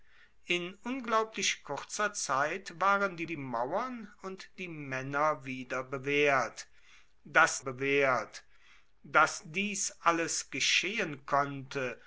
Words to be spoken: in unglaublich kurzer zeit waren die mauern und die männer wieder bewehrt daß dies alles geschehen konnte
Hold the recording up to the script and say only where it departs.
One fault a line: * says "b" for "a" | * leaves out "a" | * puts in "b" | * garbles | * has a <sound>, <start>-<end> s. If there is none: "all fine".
* puts in "die"
* puts in "bewehrt daß"